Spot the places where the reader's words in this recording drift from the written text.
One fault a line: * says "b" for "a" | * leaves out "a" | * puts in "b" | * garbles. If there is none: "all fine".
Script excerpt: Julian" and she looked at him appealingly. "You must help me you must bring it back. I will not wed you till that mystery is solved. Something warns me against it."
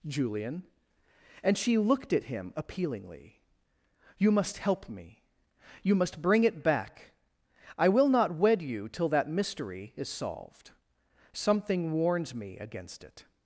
all fine